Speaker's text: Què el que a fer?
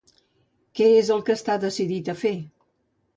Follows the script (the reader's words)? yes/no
no